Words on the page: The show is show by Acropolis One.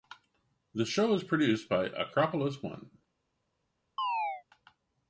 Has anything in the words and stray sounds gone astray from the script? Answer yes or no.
yes